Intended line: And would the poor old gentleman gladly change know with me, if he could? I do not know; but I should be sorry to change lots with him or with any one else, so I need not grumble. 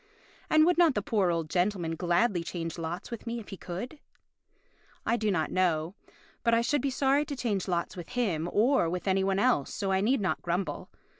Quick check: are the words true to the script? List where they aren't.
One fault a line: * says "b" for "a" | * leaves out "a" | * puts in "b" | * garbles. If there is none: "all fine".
* puts in "not"
* says "lots" for "know"